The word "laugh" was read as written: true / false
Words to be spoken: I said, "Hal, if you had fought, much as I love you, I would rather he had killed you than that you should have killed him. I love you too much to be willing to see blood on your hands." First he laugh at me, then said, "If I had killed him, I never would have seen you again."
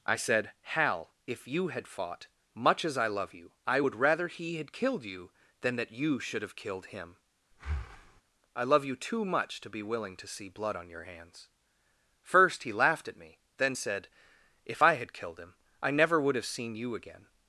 false